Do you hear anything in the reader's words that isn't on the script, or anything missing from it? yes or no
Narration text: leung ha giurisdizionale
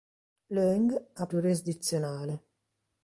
no